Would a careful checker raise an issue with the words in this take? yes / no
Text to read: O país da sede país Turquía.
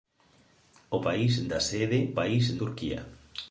no